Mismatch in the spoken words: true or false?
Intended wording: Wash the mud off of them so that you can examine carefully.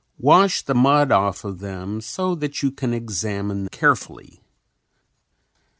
false